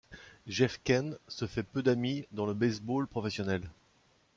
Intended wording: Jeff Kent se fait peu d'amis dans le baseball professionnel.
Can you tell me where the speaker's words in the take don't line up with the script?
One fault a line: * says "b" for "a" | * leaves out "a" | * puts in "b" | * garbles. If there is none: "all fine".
all fine